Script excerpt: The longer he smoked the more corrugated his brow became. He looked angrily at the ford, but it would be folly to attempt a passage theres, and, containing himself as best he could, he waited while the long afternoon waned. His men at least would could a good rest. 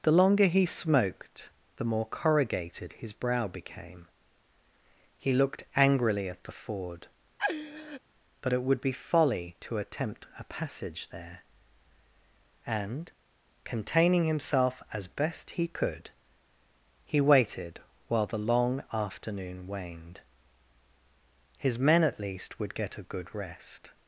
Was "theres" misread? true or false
true